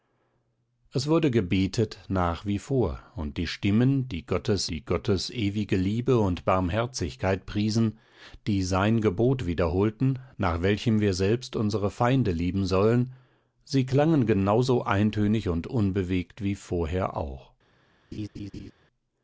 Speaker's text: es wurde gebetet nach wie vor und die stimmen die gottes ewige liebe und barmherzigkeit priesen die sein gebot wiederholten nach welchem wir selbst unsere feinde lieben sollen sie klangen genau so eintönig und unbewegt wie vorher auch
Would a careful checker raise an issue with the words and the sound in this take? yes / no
yes